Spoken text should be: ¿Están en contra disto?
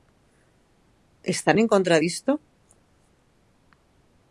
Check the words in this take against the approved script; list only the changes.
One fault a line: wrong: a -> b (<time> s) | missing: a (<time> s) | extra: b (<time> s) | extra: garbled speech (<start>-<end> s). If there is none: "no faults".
no faults